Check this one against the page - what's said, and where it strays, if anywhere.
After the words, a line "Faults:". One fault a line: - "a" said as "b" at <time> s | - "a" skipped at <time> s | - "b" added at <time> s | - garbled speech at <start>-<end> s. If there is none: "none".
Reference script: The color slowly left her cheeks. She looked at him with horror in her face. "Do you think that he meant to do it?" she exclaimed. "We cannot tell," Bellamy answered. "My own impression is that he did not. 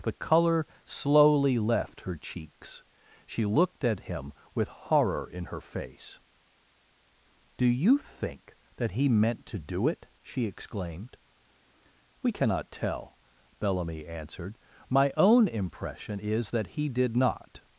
The color slowly left her cheeks. She looked at him with horror in her face. "Do you think that he meant to do it?" she exclaimed. "We cannot tell," Bellamy answered. "My own impression is that he did not.
Faults:
none